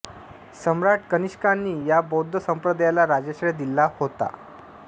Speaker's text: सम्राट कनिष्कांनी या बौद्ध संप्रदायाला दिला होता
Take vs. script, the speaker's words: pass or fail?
fail